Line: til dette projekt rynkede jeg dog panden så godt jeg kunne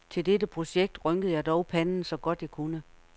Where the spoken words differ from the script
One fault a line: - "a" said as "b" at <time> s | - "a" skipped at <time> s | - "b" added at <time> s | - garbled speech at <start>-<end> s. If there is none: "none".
none